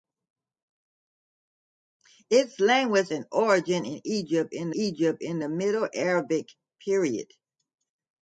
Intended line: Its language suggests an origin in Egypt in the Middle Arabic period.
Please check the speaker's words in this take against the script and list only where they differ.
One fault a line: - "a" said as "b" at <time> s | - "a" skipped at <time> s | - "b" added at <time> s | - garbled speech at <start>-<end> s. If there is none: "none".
- "suggests" skipped at 3.1 s
- "Egypt in" added at 4.7 s